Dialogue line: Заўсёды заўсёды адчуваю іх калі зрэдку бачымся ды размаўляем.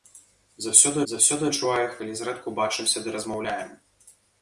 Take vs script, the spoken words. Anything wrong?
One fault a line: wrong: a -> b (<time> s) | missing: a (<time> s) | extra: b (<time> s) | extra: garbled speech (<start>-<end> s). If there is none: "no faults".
no faults